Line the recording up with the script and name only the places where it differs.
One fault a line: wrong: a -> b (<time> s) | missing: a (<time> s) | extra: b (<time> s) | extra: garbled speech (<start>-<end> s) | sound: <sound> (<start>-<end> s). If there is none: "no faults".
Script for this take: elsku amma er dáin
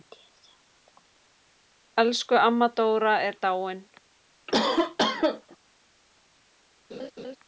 extra: dóra (2.8 s)
sound: cough (4.5-5.6 s)
sound: laugh (6.9-7.4 s)